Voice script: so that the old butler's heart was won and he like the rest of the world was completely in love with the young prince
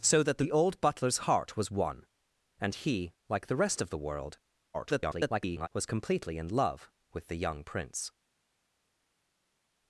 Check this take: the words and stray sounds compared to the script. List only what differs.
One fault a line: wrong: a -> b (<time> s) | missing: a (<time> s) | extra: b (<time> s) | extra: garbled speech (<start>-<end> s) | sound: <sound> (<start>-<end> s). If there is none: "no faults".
extra: garbled speech (4.7-5.7 s)